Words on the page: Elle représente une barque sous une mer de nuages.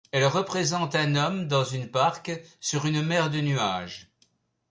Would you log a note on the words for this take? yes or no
yes